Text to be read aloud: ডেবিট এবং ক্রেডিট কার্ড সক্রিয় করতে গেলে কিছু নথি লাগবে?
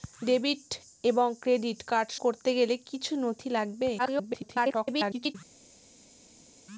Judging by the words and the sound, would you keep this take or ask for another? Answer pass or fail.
fail